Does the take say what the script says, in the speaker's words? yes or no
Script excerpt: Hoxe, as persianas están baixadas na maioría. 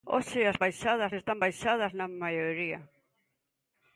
no